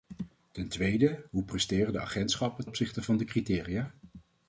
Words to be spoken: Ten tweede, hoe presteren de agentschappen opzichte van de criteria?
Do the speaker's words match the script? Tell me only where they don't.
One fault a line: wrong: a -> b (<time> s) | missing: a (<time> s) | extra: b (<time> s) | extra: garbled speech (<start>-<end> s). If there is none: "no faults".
no faults